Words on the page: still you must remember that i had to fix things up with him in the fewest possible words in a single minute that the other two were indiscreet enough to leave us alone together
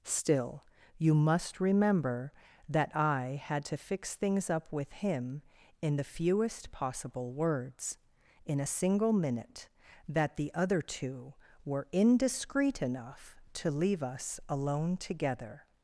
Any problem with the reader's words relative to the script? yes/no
no